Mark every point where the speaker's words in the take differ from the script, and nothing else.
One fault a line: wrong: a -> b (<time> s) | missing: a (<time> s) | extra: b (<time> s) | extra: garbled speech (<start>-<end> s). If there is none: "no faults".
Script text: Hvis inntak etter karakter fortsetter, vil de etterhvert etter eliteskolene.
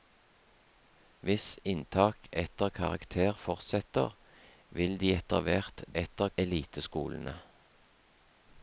no faults